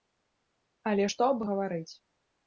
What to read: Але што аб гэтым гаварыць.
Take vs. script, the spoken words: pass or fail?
fail